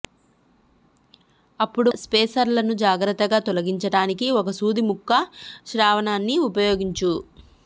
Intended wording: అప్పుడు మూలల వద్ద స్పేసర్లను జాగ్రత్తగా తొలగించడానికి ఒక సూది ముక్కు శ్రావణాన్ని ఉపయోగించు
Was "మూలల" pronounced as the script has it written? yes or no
no